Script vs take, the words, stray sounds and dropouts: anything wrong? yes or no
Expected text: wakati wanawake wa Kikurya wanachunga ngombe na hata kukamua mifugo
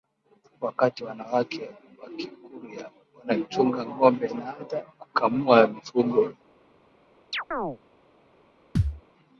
yes